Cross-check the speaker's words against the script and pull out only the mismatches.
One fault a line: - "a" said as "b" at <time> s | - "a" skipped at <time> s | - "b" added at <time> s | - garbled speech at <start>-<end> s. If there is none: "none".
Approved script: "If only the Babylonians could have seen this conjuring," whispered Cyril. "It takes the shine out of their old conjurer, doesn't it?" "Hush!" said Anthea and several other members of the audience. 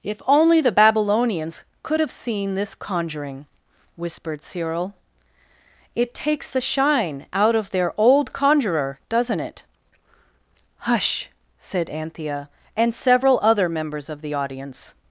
none